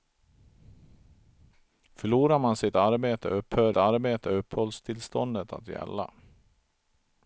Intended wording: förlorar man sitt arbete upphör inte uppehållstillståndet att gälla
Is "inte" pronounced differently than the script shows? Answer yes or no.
yes